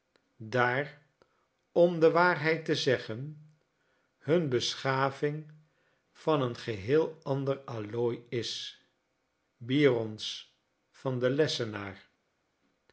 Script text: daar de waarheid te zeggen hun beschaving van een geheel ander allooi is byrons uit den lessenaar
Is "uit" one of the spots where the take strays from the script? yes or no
yes